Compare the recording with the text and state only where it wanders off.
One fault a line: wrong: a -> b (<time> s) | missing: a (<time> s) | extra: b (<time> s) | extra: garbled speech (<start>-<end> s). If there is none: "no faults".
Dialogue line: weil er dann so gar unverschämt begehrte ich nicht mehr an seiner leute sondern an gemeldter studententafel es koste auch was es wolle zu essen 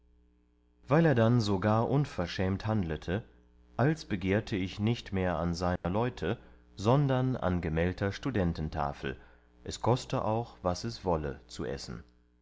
extra: handlete als (2.6 s)